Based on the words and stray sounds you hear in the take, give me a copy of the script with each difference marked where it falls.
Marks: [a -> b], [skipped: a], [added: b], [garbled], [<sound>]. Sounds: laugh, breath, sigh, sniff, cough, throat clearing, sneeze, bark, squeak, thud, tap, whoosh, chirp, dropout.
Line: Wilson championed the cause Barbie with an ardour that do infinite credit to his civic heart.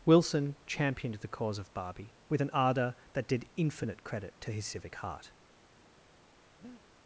Wilson championed the cause [added: of] Barbie with an ardour that [do -> did] infinite credit to his civic heart. [breath]